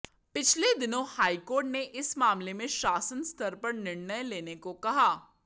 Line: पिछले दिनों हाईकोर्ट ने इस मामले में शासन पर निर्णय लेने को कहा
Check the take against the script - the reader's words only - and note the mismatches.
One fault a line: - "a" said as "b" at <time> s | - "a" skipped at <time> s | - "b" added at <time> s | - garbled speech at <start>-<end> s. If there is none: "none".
- "स्तर" added at 3.2 s